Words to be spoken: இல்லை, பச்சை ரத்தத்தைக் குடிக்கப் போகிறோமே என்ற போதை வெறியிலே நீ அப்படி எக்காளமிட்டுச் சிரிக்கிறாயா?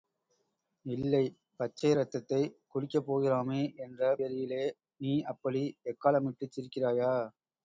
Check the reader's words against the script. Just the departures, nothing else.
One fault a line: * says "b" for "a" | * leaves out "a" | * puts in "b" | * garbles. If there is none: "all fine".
* leaves out "போதை"